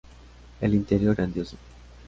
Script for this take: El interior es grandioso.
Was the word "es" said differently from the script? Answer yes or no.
yes